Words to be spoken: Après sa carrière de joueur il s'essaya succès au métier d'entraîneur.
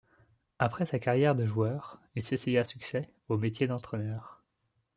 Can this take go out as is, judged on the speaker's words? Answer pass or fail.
pass